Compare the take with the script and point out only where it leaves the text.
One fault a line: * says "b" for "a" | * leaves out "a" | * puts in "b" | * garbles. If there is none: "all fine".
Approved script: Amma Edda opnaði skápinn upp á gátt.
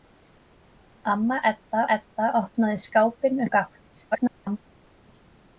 * puts in "Edda"
* leaves out "upp"
* garbles